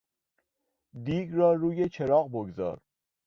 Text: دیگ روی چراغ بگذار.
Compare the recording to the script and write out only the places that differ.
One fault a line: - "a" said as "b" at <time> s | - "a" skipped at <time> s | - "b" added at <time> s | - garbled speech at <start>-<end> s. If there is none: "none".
- "را" added at 1.3 s